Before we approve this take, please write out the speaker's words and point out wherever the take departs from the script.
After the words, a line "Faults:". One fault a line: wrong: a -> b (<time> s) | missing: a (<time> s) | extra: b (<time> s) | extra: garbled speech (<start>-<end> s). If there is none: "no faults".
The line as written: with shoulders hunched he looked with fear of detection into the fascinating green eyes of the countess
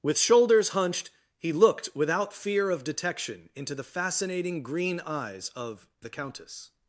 with shoulders hunched he looked without fear of detection into the fascinating green eyes of the countess
Faults:
wrong: with -> without (1.9 s)